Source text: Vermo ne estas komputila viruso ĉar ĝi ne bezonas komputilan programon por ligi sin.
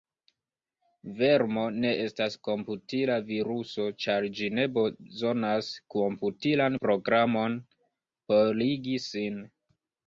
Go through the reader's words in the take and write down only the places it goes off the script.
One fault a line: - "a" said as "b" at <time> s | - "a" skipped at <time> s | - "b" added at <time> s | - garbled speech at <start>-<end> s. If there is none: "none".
none